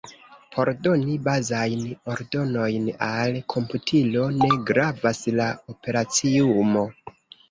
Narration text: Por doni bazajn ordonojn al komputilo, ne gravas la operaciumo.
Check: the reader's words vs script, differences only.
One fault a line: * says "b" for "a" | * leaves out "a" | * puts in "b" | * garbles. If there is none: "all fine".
all fine